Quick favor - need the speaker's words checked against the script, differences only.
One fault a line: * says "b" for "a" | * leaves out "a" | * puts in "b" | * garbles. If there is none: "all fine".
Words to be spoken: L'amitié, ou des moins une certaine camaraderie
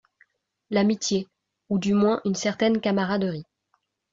* says "du" for "des"